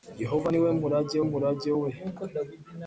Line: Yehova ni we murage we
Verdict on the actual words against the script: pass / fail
fail